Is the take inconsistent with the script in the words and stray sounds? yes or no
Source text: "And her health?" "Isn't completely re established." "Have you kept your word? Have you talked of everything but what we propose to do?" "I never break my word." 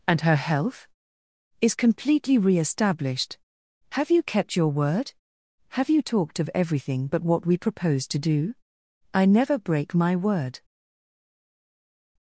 yes